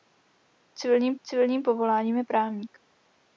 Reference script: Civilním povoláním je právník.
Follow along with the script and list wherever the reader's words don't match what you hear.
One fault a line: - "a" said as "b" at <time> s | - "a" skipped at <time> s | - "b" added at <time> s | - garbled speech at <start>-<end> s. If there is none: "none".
- "civilním" added at 1.3 s